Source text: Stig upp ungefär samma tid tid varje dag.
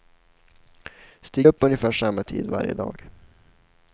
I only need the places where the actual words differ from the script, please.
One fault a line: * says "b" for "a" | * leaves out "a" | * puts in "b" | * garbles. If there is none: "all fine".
* leaves out "tid"